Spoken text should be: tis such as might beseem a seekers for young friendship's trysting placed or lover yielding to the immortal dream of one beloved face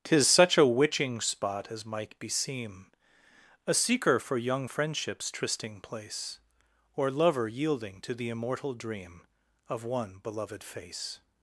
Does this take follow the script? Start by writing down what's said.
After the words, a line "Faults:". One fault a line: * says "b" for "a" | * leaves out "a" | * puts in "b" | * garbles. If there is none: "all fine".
tis such a witching spot as might beseem a seeker for young friendship's trysting place or lover yielding to the immortal dream of one beloved face
Faults:
* puts in "a witching spot"
* says "seeker" for "seekers"
* says "place" for "placed"